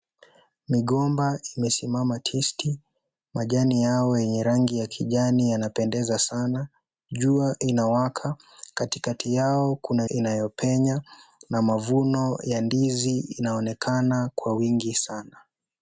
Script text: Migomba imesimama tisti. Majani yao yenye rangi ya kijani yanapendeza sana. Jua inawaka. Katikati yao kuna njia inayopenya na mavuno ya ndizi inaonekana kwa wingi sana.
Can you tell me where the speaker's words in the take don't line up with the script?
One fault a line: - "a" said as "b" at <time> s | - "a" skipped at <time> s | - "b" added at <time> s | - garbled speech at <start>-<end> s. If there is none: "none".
- "njia" skipped at 10.1 s